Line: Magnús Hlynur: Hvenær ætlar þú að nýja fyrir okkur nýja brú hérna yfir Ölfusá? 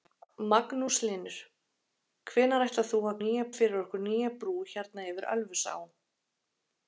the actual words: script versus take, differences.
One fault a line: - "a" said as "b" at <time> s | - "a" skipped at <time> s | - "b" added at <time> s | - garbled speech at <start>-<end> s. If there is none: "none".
none